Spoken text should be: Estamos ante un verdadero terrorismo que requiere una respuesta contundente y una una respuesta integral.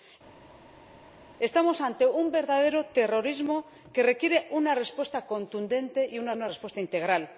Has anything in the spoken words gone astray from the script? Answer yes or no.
no